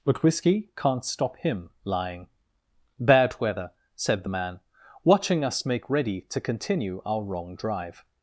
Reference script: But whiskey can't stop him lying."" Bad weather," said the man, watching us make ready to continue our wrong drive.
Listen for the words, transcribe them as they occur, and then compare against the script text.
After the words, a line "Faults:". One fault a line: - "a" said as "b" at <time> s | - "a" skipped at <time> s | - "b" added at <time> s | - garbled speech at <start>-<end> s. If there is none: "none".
But whiskey can't stop him lying."" Bad weather," said the man, watching us make ready to continue our wrong drive.
Faults:
none